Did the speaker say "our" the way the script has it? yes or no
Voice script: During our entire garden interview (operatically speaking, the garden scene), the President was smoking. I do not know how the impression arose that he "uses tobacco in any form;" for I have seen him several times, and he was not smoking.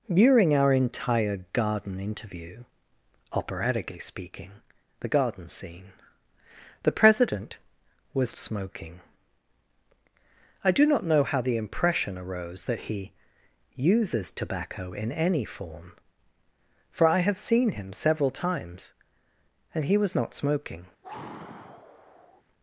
yes